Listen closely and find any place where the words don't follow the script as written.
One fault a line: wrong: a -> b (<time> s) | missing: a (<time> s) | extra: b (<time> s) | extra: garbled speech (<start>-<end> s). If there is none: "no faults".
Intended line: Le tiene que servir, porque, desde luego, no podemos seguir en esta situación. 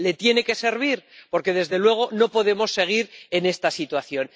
no faults